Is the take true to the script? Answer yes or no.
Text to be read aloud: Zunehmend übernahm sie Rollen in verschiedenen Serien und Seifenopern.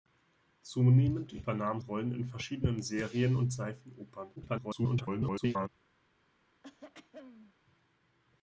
no